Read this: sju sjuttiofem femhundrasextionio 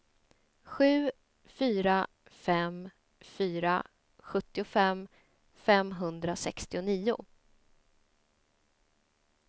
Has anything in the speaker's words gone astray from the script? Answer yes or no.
yes